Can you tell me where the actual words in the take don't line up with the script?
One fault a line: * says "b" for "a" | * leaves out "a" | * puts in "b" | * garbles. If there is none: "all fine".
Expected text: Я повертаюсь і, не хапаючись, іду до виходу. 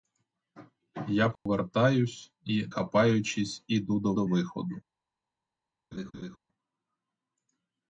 * leaves out "не"
* puts in "до"